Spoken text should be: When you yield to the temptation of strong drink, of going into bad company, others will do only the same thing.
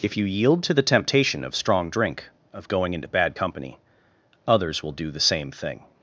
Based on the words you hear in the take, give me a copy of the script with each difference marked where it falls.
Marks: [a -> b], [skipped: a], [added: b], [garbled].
[When -> If] you yield to the temptation of strong drink, of going into bad company, others will do [skipped: only] the same thing.